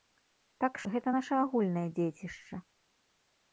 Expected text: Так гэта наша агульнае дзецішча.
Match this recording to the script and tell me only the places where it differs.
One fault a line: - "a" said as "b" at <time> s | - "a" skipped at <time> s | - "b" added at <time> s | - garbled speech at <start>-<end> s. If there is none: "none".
none